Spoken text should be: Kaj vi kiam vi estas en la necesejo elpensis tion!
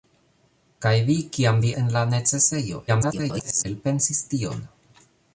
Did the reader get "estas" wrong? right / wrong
wrong